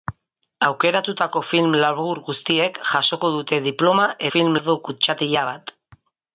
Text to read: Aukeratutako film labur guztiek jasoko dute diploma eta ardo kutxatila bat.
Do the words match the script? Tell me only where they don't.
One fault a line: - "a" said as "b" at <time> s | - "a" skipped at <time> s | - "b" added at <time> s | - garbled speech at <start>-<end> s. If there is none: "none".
- "eta" said as "film" at 4.3 s